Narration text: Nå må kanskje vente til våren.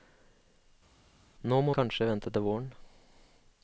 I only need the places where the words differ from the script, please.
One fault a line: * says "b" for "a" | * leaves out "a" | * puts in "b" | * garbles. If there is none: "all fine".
all fine